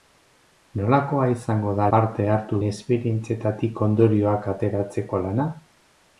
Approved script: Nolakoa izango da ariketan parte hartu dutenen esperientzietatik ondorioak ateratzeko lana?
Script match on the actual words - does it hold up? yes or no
no